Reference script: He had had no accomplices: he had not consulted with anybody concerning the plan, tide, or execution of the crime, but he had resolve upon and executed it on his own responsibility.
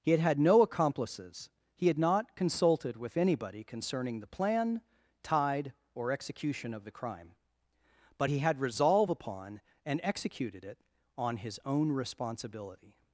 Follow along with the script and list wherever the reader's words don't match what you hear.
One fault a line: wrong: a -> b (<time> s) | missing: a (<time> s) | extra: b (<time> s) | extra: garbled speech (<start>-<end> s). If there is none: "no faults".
no faults